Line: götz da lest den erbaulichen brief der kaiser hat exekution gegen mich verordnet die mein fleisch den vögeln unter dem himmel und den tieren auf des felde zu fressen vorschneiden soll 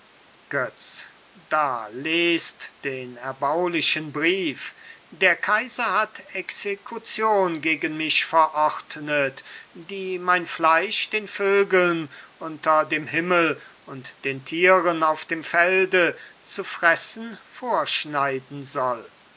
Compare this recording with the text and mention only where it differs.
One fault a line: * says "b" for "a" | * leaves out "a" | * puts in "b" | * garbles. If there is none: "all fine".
* says "dem" for "des"